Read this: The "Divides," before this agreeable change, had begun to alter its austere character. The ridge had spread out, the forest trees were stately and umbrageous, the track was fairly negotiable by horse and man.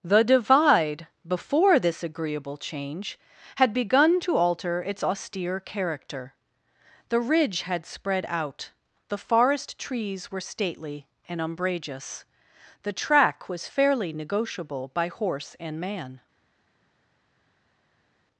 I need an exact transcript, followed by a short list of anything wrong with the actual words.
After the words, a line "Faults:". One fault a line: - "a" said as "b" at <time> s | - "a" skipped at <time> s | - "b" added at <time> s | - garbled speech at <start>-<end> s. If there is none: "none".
The "Divide," before this agreeable change, had begun to alter its austere character. The ridge had spread out, the forest trees were stately and umbrageous, the track was fairly negotiable by horse and man.
Faults:
- "Divides" said as "Divide" at 0.2 s